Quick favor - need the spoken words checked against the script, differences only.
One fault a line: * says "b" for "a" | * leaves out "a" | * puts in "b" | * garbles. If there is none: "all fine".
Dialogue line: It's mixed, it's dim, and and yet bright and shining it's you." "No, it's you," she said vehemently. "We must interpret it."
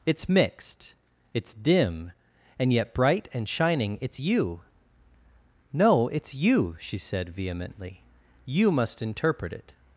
* leaves out "and"
* says "You" for "We"